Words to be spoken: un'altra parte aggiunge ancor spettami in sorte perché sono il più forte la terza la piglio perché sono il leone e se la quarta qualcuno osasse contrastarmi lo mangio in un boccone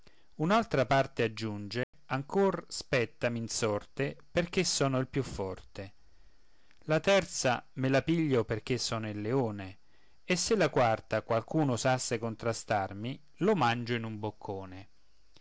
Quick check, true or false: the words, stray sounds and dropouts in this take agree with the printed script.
false